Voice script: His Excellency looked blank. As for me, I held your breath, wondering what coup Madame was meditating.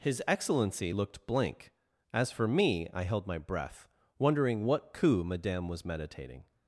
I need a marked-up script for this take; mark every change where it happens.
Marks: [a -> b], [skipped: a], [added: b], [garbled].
His Excellency looked blank. As for me, I held [your -> my] breath, wondering what coup Madame was meditating.